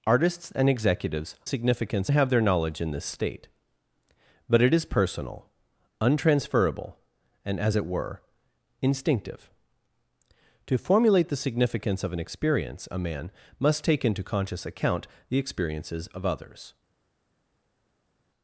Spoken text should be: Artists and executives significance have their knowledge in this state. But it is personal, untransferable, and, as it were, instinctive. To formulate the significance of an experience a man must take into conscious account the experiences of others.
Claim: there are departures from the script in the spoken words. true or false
false